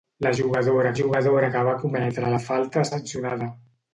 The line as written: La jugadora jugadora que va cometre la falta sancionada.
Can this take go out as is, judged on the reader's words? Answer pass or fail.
pass